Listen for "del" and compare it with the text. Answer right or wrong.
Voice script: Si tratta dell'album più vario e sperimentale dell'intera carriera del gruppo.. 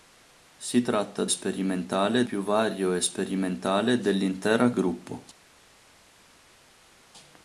wrong